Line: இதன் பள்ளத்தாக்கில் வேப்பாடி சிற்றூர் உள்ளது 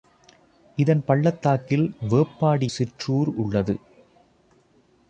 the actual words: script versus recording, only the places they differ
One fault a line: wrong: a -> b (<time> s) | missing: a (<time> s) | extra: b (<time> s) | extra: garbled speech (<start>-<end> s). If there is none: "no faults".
no faults